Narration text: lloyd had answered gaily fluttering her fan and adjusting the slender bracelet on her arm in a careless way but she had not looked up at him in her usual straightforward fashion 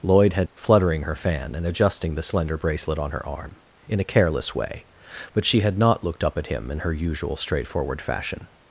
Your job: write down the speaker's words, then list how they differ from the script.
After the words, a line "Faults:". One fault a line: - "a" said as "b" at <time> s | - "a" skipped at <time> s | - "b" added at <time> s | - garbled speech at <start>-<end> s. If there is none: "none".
lloyd had fluttering her fan and adjusting the slender bracelet on her arm in a careless way but she had not looked up at him in her usual straightforward fashion
Faults:
- "answered gaily" skipped at 0.5 s